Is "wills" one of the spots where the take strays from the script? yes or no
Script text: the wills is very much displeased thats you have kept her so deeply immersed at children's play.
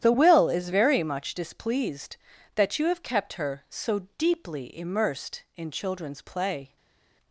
yes